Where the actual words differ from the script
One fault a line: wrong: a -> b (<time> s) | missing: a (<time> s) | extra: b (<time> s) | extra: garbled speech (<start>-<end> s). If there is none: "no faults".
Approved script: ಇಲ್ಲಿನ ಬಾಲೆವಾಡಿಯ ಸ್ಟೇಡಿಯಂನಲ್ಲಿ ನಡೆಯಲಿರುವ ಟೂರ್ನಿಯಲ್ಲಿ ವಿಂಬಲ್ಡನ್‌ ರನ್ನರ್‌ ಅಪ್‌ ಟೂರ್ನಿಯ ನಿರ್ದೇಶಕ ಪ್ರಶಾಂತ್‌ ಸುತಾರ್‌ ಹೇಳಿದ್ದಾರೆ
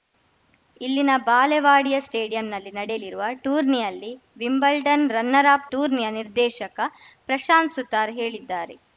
no faults